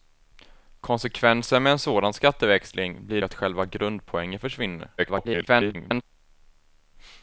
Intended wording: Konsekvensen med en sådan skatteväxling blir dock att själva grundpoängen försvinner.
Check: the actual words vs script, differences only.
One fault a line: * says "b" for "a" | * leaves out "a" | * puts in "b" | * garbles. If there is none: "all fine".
* leaves out "dock"
* garbles